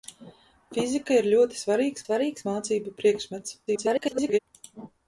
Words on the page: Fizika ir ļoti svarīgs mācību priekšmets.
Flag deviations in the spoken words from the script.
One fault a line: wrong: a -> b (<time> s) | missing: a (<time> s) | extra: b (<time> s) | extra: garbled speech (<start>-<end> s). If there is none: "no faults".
extra: svarīgs (2.0 s)
extra: garbled speech (3.7-4.4 s)